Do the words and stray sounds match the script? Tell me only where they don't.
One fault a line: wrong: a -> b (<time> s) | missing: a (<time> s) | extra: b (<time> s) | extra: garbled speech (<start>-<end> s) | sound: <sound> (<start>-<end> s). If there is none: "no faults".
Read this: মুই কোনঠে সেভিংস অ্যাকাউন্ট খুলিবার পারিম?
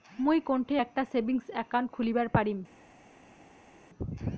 extra: একটা (0.8 s)